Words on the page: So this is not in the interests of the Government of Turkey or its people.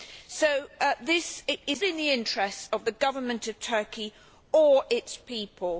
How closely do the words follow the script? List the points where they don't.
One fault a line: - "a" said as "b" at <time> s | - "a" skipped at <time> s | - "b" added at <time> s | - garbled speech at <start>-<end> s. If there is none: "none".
- "not" skipped at 1.8 s